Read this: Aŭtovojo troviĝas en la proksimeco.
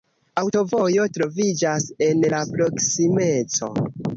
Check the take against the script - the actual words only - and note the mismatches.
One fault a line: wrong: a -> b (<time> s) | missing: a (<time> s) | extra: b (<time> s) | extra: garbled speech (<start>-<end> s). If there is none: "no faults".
no faults